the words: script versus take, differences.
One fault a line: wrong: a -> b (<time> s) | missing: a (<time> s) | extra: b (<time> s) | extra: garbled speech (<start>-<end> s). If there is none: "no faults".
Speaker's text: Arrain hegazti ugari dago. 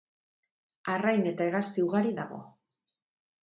extra: eta (1.3 s)